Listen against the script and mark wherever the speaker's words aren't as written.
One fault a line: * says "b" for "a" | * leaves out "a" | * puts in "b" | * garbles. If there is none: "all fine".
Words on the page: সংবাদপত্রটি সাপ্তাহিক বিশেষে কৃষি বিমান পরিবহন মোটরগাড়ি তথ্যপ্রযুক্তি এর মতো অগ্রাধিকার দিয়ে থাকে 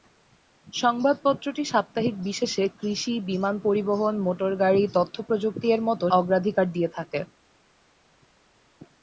all fine